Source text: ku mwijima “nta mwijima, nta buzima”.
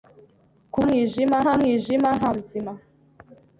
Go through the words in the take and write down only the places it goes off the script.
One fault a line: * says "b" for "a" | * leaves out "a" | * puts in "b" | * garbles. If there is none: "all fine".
all fine